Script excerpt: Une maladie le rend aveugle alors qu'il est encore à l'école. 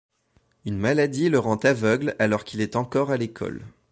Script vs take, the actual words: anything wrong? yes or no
no